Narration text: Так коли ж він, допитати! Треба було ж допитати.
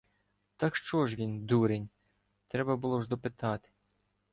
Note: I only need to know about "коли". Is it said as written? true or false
false